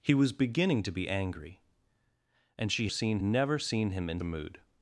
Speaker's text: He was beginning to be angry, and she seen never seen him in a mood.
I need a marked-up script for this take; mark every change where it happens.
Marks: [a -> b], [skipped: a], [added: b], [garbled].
He was beginning to be angry, and she seen never seen him in a mood.